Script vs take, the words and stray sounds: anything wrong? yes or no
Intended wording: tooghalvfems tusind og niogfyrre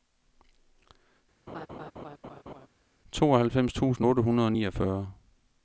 yes